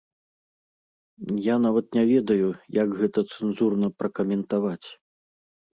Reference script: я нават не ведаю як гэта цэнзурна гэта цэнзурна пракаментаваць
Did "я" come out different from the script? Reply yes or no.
no